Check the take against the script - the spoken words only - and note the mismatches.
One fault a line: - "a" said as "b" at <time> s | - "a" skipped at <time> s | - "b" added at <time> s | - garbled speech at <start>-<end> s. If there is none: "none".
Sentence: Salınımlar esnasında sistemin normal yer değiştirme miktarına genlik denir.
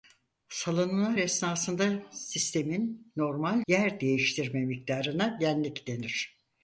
none